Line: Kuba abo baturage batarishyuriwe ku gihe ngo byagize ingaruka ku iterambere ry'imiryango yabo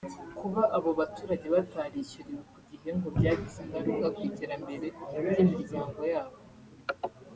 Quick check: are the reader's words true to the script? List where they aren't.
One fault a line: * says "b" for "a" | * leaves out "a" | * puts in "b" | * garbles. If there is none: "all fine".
all fine